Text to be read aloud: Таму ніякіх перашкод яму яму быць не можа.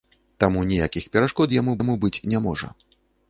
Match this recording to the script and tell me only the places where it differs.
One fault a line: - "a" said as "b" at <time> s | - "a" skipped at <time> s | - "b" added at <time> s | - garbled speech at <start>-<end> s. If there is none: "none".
none